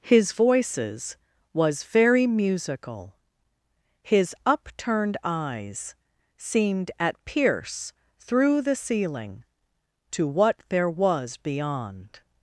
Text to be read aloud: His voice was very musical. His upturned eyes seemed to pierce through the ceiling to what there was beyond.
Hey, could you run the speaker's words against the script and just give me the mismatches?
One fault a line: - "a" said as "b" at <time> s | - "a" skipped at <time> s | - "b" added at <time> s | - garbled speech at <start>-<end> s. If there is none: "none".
- "voice" said as "voices" at 0.3 s
- "to" said as "at" at 7.0 s